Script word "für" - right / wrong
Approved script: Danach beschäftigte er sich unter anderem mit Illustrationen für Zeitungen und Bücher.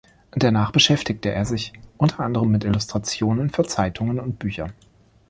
right